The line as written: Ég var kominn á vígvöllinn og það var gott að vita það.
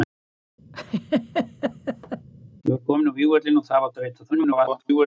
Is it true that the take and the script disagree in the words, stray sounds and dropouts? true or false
true